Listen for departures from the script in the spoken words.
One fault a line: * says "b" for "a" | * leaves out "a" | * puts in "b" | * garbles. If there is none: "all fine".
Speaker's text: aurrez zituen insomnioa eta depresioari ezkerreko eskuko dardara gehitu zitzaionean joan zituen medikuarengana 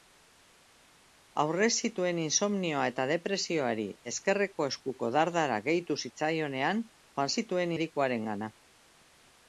all fine